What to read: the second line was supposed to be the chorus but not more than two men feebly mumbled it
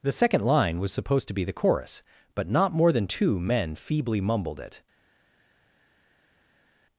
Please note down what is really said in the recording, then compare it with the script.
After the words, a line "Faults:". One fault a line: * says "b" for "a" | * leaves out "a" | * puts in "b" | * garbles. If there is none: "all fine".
the second line was supposed to be the chorus but not more than two men feebly mumbled it
Faults:
all fine